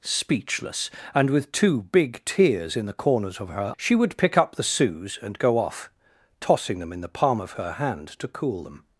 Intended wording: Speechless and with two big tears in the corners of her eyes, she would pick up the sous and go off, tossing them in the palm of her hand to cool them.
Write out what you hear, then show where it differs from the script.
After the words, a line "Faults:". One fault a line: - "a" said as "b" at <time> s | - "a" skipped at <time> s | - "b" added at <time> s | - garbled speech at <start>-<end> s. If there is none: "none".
Speechless and with two big tears in the corners of her she would pick up the sous and go off, tossing them in the palm of her hand to cool them.
Faults:
- "eyes" skipped at 3.7 s